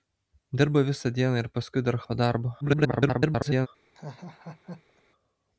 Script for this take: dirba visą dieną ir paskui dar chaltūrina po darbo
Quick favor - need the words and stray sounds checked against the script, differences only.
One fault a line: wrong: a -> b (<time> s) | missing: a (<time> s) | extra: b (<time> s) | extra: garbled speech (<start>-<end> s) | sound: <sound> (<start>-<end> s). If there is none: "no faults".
missing: chaltūrina (2.0 s)
extra: garbled speech (2.6-3.7 s)
sound: laugh (3.9-5.0 s)